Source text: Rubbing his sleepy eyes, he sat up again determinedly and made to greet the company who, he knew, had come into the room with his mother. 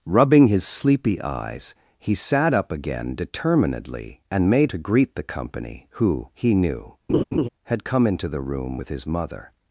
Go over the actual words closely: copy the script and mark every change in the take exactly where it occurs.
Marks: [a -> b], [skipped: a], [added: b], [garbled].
Rubbing his sleepy eyes, he sat up again determinedly and made to greet the company who, he knew, had come into the room with his mother.